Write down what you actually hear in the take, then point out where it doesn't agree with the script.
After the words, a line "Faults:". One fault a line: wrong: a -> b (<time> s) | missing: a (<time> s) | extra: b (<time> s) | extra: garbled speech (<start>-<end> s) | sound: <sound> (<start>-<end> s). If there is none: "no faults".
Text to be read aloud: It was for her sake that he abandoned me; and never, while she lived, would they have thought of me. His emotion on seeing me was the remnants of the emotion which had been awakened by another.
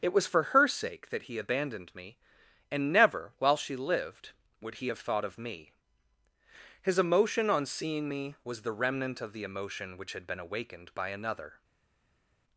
It was for her sake that he abandoned me; and never, while she lived, would he have thought of me. His emotion on seeing me was the remnant of the emotion which had been awakened by another.
Faults:
wrong: they -> he (4.8 s)
wrong: remnants -> remnant (8.7 s)